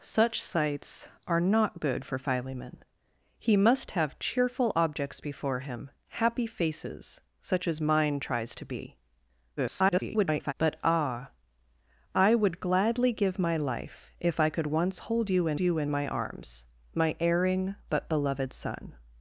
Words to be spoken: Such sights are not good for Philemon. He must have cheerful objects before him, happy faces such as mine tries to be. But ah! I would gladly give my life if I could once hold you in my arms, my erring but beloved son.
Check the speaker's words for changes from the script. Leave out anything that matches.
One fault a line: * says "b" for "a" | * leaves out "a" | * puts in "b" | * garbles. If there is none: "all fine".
* garbles
* puts in "you in"